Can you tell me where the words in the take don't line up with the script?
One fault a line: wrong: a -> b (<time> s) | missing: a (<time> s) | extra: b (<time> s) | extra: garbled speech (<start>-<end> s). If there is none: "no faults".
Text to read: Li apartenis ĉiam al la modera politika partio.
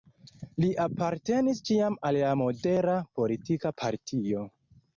no faults